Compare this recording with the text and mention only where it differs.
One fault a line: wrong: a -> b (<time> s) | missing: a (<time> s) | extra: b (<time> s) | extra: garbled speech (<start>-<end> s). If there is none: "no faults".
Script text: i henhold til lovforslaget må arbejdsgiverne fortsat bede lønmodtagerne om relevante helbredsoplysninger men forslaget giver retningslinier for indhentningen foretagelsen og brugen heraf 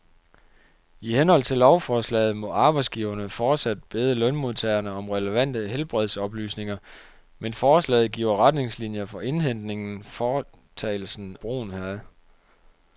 missing: og (11.4 s)